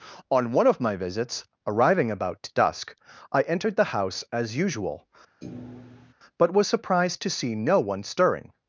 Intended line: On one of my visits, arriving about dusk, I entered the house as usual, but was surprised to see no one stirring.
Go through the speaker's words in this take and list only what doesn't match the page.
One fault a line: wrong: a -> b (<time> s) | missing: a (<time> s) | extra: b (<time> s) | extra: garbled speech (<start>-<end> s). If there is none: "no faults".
no faults